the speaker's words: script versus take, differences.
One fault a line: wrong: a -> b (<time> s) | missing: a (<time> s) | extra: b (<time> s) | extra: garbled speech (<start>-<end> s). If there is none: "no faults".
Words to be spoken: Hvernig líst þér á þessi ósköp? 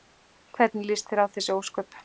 no faults